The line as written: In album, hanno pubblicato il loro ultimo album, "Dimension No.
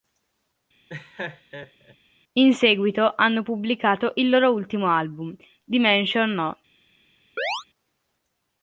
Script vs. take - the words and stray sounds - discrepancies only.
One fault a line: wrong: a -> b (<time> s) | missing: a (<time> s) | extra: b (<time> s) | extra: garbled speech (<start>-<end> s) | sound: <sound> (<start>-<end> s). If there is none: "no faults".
sound: laugh (0.9-2.0 s)
wrong: album -> seguito (2.5 s)
sound: chirp (7.4-7.6 s)